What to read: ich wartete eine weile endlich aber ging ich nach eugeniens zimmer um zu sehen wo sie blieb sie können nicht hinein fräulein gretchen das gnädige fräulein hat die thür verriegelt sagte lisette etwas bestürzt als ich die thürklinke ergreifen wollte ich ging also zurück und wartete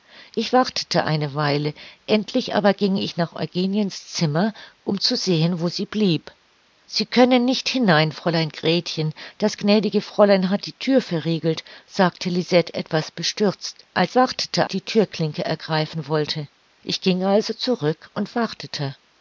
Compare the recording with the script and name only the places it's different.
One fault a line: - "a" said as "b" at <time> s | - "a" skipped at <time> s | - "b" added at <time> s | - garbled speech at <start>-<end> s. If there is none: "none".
- "ich" said as "wartete" at 14.1 s